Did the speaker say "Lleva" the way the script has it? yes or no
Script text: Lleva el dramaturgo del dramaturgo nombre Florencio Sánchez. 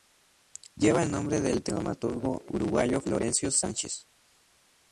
yes